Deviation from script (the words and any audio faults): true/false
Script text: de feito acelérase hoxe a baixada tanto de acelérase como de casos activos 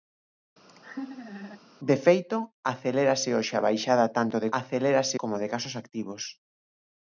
true